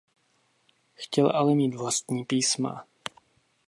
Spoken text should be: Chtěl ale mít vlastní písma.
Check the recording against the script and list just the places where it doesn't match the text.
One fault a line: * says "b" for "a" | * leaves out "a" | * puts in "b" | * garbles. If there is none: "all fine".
all fine